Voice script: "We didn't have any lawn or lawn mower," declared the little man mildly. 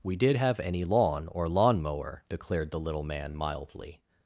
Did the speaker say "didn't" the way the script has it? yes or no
no